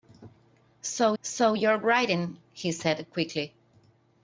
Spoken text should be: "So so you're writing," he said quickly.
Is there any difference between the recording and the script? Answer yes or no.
no